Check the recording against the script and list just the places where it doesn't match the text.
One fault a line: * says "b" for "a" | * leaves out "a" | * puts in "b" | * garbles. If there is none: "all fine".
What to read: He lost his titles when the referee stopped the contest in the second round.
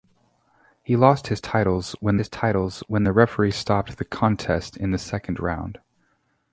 * puts in "his titles when"